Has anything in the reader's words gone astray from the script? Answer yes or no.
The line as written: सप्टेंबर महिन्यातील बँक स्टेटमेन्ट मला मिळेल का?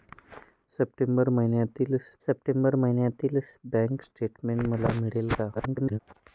yes